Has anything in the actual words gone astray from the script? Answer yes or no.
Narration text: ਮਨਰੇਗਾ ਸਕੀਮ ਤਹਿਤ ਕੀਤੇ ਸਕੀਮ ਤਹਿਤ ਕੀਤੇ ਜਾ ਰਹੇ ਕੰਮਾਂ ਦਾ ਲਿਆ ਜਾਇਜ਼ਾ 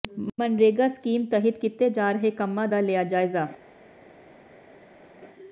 yes